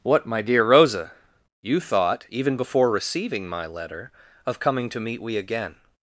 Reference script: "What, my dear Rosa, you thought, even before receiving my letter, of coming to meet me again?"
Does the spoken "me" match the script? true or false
false